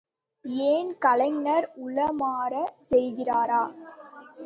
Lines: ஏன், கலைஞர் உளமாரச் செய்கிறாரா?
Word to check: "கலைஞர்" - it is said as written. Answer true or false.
true